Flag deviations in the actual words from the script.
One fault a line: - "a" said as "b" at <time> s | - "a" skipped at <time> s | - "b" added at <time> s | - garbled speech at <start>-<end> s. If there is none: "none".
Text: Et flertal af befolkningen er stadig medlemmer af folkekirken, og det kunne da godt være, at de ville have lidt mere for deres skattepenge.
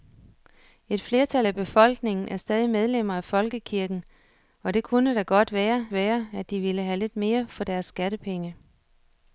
- "være" added at 5.9 s